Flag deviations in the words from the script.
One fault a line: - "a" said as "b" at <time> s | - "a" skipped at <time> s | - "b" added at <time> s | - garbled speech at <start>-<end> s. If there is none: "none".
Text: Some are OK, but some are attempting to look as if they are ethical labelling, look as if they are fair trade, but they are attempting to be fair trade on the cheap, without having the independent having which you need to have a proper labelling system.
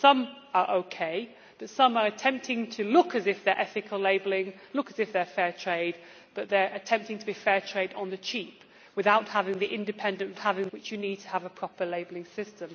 none